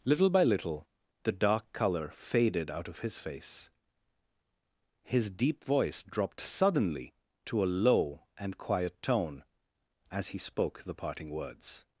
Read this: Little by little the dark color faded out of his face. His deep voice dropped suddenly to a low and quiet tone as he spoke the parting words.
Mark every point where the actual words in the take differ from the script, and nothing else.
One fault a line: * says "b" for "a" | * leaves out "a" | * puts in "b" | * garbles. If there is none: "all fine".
all fine